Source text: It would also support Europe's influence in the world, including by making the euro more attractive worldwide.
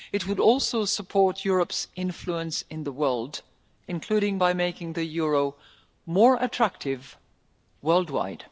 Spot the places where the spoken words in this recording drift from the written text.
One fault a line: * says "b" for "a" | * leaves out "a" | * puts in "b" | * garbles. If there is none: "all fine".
all fine